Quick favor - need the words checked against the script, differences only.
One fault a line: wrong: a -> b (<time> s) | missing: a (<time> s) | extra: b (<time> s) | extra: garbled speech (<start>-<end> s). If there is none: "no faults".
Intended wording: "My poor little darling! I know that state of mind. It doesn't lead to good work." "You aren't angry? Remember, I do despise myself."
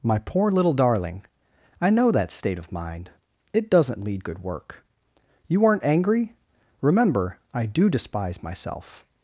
missing: to (4.2 s)